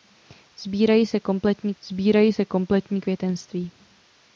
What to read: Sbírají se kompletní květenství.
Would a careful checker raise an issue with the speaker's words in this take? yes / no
yes